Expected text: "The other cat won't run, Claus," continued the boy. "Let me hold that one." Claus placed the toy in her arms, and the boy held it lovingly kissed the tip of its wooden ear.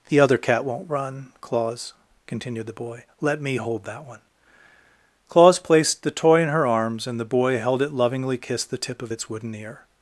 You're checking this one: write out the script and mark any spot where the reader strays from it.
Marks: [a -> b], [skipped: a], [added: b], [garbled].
"The other cat won't run, Claus," continued the boy. "Let me hold that one." Claus placed the toy in her arms, and the boy held it lovingly kissed the tip of its wooden ear.